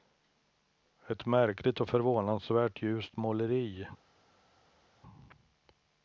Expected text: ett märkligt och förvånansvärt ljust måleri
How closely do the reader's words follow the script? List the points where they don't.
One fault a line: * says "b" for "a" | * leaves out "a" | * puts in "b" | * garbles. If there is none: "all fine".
all fine